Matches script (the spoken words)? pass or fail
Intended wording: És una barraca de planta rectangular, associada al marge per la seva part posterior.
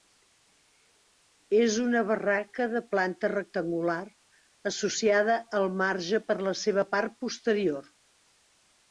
pass